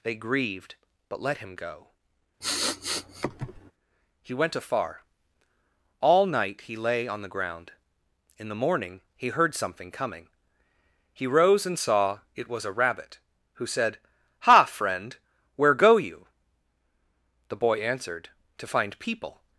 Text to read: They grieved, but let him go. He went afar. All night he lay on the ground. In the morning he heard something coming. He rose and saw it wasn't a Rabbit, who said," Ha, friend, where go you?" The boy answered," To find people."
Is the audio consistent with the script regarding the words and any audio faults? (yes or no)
no